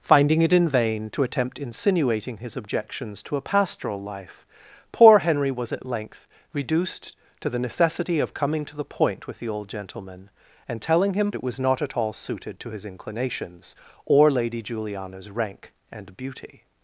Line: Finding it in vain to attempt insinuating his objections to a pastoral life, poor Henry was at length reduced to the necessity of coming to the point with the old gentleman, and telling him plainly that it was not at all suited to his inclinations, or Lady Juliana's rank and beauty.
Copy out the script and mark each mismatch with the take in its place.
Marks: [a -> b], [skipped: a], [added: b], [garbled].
Finding it in vain to attempt insinuating his objections to a pastoral life, poor Henry was at length reduced to the necessity of coming to the point with the old gentleman, and telling him [skipped: plainly that] it was not at all suited to his inclinations, or Lady Juliana's rank and beauty.